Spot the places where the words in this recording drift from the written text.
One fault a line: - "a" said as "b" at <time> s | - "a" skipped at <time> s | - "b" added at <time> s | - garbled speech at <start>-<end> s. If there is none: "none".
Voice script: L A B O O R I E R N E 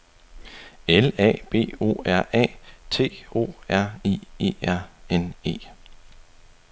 - "R A T" added at 2.1 s